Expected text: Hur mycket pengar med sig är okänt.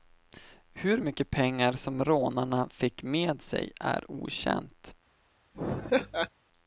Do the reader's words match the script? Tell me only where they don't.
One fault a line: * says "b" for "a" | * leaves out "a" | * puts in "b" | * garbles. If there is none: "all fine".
* puts in "som rånarna fick"